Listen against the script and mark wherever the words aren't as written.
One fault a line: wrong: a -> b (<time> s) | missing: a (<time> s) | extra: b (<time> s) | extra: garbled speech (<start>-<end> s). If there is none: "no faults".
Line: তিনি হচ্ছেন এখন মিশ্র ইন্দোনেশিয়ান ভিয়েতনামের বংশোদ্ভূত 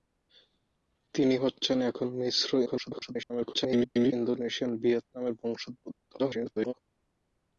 extra: garbled speech (2.7-4.1 s)
extra: garbled speech (6.2-6.7 s)